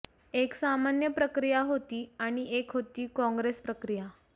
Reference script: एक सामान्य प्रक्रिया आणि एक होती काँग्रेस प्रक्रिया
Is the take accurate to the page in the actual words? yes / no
no